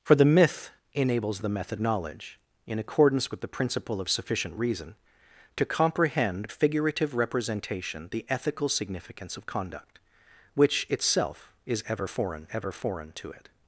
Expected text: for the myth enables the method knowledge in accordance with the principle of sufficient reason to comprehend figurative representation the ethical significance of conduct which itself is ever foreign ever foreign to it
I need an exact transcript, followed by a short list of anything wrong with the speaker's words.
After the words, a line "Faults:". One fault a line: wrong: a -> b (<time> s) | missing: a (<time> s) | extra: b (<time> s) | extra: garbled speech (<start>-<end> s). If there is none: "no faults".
for the myth enables the method knowledge in accordance with the principle of sufficient reason to comprehend figurative representation the ethical significance of conduct which itself is ever foreign ever foreign to it
Faults:
no faults